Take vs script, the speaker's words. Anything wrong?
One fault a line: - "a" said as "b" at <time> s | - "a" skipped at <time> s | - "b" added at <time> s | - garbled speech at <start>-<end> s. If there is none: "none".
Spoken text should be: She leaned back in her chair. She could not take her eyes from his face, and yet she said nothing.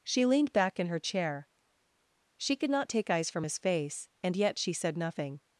- "her" skipped at 3.1 s